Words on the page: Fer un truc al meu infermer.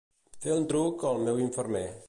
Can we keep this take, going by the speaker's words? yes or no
yes